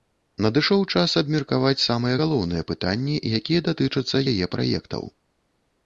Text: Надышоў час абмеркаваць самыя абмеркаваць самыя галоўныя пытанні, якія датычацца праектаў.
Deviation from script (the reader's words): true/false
true